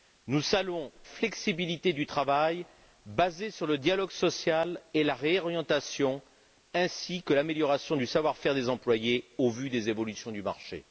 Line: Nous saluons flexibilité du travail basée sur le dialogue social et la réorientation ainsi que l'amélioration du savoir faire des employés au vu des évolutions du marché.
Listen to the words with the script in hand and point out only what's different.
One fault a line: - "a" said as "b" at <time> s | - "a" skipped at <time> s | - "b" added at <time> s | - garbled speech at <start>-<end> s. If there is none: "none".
none